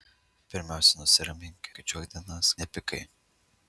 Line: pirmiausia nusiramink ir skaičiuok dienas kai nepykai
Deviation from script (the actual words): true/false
true